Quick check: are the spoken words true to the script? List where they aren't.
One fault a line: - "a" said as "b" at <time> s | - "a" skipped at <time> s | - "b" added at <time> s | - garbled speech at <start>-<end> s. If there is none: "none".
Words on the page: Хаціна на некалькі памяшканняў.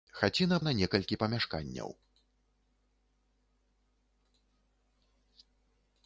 none